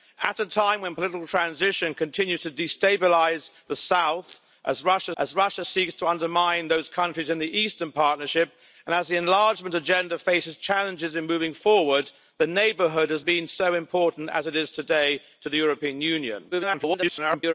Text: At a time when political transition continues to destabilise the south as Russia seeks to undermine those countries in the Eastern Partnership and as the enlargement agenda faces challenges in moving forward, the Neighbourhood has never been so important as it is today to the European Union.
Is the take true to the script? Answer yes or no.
no